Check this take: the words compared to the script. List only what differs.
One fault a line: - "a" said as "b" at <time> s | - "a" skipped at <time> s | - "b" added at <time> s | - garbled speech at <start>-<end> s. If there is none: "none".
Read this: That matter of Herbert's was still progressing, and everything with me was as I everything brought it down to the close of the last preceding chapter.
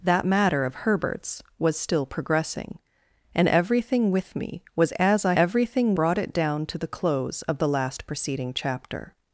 none